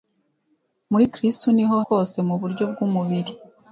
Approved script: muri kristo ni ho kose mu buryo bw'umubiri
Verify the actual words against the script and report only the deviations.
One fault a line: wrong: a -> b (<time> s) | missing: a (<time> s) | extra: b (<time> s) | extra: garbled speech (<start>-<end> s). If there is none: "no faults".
no faults